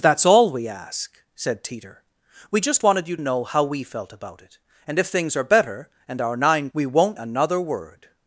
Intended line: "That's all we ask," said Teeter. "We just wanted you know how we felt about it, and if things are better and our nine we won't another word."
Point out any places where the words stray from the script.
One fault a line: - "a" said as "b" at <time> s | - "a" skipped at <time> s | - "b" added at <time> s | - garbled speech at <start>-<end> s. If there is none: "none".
none